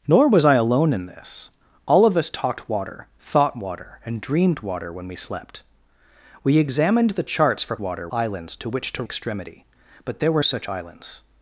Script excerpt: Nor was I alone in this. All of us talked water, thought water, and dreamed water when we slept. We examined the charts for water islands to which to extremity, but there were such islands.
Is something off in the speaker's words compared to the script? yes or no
no